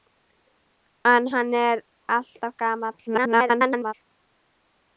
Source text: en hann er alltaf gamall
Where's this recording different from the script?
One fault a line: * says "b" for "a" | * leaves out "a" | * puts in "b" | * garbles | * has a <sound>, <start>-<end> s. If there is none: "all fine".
* garbles